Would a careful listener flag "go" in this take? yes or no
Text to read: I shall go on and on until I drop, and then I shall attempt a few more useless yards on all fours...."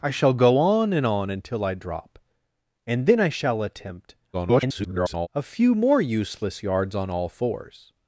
no